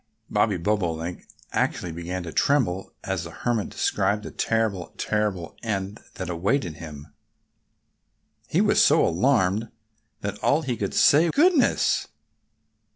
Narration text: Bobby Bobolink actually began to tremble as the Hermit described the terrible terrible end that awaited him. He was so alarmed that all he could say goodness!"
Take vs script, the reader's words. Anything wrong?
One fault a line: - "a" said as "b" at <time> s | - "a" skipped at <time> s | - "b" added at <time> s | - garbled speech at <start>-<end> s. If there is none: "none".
none